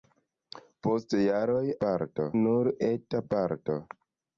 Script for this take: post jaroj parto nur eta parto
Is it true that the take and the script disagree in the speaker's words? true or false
false